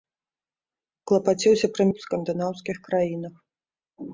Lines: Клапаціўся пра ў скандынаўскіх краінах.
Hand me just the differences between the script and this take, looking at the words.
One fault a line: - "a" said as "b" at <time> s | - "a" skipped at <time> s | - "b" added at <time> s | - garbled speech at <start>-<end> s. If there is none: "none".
none